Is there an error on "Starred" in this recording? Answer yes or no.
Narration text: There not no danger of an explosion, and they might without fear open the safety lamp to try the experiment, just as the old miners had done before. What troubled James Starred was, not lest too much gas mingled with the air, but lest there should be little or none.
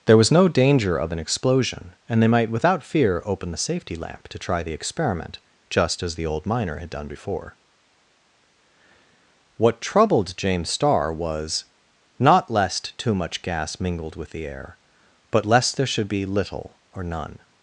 yes